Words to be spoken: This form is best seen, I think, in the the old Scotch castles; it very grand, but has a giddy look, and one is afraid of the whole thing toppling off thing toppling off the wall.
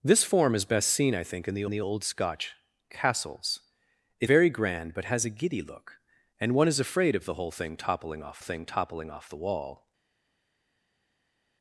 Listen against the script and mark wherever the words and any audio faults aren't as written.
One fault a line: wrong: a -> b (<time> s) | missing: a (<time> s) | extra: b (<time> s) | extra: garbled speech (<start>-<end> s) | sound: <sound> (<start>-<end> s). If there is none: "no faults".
no faults